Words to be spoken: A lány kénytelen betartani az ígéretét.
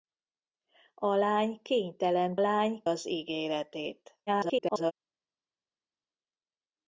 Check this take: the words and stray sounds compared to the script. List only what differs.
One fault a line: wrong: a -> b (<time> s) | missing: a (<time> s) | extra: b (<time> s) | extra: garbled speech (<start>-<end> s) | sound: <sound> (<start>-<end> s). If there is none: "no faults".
wrong: betartani -> lány (2.4 s)
extra: garbled speech (4.3-4.9 s)